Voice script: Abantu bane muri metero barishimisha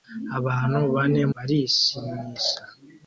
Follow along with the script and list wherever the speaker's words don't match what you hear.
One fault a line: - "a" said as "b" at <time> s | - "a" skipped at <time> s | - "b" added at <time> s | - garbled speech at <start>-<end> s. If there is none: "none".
- "muri metero" skipped at 1.2 s